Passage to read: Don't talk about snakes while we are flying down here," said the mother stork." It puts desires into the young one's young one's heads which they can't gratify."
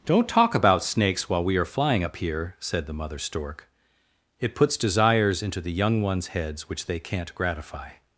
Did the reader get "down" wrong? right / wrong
wrong